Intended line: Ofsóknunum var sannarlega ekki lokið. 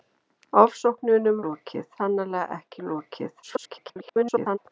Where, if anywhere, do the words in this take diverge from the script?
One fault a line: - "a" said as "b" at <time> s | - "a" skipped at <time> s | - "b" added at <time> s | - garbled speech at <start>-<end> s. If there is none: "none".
- "var" said as "lokið" at 1.5 s
- garbled speech at 3.4-4.6 s